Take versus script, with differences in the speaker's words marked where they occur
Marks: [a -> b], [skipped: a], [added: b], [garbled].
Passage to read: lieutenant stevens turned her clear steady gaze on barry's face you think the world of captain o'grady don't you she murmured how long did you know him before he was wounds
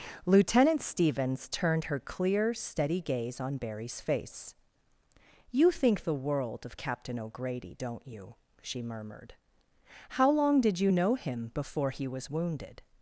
lieutenant stevens turned her clear steady gaze on barry's face you think the world of captain o'grady don't you she murmured how long did you know him before he was [wounds -> wounded]